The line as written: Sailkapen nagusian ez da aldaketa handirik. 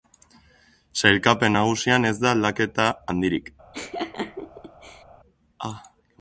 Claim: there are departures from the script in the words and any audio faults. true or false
true